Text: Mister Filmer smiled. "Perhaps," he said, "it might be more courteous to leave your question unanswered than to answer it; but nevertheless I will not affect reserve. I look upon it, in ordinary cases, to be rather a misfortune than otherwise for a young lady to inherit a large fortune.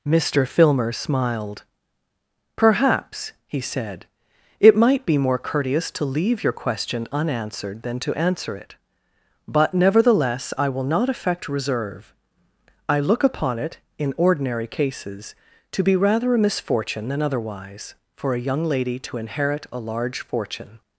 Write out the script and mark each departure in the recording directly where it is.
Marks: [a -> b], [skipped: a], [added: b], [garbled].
Mister Filmer smiled. "Perhaps," he said, "it might be more courteous to leave your question unanswered than to answer it; but nevertheless I will not affect reserve. I look upon it, in ordinary cases, to be rather a misfortune than otherwise for a young lady to inherit a large fortune.